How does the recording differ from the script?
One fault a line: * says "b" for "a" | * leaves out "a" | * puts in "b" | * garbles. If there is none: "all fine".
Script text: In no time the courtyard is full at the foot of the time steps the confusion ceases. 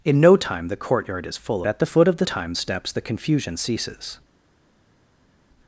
all fine